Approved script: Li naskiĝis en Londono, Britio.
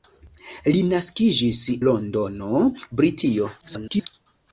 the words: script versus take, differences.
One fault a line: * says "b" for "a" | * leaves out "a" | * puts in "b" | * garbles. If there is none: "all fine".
* leaves out "en"
* garbles